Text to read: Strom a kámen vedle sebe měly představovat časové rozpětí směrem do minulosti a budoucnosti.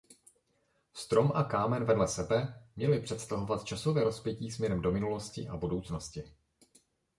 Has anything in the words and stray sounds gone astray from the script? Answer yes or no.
no